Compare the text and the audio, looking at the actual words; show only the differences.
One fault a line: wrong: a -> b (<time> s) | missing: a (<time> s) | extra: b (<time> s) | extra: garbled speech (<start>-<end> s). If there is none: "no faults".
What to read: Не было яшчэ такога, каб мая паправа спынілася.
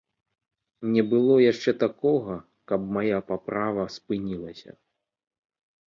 no faults